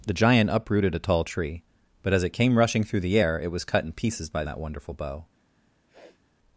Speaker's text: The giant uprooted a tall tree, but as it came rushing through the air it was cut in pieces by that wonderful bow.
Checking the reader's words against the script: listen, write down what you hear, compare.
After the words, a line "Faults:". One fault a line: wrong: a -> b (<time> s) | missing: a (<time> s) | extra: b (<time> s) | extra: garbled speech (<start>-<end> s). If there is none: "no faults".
The giant uprooted a tall tree, but as it came rushing through the air it was cut in pieces by that wonderful bow.
Faults:
no faults